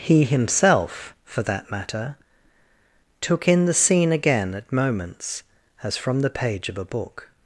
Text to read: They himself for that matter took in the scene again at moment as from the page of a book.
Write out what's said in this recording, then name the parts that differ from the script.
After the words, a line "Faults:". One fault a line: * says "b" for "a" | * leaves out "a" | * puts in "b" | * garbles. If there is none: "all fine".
He himself for that matter took in the scene again at moments as from the page of a book.
Faults:
* says "He" for "They"
* says "moments" for "moment"